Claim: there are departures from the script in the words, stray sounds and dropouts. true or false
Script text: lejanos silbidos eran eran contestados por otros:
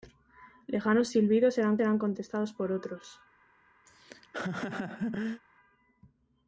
true